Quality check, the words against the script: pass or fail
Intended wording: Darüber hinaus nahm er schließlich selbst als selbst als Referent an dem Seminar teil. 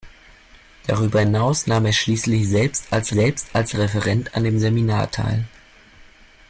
pass